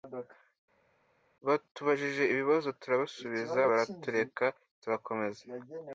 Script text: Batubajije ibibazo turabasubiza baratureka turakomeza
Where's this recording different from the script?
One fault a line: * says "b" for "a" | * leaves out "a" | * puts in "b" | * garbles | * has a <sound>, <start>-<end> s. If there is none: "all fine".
all fine